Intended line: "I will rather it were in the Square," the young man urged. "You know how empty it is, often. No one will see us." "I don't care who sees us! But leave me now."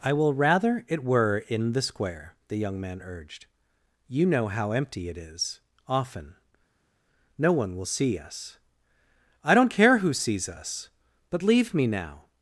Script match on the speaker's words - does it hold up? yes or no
yes